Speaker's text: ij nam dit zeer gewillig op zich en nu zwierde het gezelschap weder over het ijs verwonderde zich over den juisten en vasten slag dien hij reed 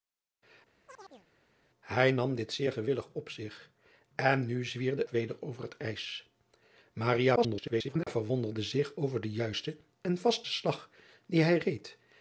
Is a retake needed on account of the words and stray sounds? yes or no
yes